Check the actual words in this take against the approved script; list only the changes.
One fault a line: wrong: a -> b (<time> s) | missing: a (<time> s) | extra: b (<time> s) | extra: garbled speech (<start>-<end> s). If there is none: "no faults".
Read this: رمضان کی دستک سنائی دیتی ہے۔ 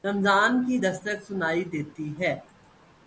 no faults